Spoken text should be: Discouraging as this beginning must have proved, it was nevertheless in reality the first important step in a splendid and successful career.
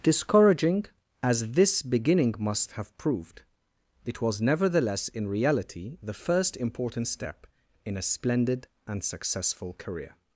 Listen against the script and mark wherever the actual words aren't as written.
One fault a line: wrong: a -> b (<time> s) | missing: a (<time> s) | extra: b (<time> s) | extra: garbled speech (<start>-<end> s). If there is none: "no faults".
no faults